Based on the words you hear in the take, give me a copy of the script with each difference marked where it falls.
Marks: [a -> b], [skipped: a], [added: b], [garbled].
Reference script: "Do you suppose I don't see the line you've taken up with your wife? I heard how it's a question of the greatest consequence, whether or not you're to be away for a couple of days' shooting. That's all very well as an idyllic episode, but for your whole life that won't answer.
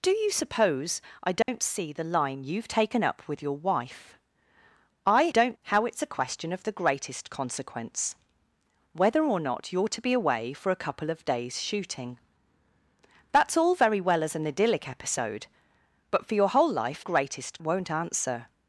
"Do you suppose I don't see the line you've taken up with your wife? I [heard -> don't] how it's a question of the greatest consequence, whether or not you're to be away for a couple of days' shooting. That's all very well as an idyllic episode, but for your whole life [that -> greatest] won't answer.